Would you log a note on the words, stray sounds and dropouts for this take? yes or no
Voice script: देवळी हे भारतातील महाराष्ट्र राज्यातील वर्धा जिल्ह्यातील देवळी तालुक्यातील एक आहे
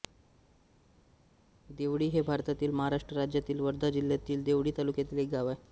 yes